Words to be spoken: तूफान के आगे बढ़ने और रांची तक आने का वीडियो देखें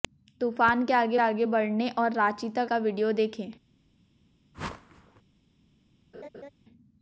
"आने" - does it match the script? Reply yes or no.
no